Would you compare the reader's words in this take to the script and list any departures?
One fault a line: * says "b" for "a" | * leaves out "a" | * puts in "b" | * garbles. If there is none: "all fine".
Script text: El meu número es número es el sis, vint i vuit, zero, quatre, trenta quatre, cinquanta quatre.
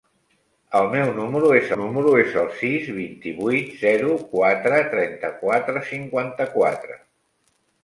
all fine